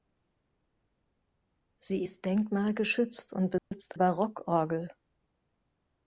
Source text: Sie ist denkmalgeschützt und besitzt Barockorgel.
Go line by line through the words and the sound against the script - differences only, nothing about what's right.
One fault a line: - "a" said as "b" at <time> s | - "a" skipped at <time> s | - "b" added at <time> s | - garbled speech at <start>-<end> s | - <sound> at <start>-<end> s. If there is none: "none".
- dropout at 3.6-3.7 s